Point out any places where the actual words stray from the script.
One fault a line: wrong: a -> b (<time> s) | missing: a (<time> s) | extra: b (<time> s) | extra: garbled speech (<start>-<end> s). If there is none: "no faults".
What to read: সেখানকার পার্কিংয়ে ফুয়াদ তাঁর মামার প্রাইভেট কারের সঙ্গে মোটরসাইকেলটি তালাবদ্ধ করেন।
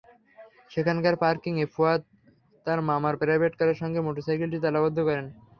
no faults